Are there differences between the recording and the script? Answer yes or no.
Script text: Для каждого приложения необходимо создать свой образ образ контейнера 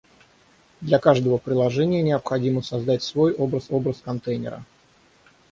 no